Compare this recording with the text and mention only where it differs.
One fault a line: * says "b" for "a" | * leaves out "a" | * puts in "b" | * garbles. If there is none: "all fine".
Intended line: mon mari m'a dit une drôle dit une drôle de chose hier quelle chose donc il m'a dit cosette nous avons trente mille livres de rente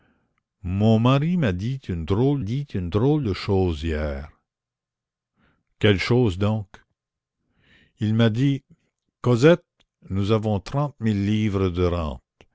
all fine